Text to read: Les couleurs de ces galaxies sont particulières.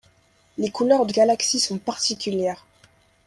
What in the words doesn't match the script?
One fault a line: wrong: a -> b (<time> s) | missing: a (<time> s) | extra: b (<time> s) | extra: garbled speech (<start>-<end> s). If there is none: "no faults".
missing: ces (1.1 s)